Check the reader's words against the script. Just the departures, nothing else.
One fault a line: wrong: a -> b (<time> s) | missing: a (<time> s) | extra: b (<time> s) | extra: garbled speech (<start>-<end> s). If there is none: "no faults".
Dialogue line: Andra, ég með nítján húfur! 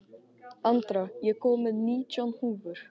extra: kom (1.4 s)